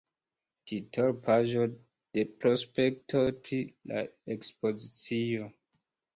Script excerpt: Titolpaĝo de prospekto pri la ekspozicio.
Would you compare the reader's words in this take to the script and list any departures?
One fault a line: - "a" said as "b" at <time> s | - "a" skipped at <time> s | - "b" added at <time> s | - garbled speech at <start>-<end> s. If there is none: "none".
none